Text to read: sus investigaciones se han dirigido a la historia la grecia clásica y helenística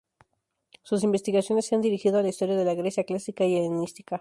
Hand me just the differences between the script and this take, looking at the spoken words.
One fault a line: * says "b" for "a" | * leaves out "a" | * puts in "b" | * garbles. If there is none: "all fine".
* puts in "de"